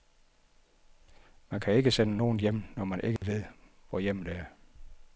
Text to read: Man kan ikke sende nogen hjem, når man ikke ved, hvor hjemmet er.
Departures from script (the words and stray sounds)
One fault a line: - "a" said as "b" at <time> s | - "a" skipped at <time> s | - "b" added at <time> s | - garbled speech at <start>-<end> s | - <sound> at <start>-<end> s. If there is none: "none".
- dropout at 3.2-3.2 s